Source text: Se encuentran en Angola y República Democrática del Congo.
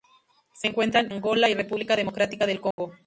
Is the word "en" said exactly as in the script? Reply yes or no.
no